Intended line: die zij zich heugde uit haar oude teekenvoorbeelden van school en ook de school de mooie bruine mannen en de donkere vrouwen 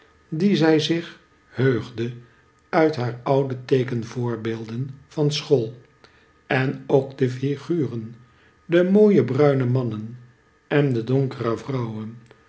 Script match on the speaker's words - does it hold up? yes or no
no